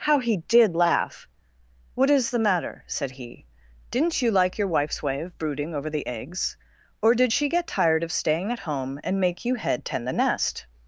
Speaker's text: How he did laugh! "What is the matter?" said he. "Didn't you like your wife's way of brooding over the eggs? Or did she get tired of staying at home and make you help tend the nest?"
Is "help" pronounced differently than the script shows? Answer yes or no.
yes